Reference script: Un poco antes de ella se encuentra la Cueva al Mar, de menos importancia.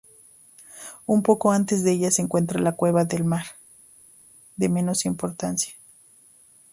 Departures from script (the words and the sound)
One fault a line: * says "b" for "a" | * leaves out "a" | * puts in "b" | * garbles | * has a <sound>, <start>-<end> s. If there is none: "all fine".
* says "del" for "al"